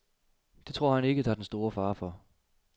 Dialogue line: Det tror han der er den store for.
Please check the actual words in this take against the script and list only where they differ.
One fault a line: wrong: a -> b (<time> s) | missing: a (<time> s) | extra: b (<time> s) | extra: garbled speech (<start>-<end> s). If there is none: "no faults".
extra: ikke (1.0 s)
extra: fare (1.7 s)